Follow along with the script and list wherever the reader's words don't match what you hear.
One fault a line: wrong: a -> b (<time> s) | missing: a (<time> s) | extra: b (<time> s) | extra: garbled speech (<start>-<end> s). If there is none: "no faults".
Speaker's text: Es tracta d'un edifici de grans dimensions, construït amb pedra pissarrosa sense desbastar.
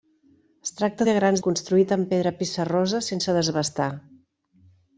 missing: d'un edifici (1.1 s)
missing: dimensions (1.4 s)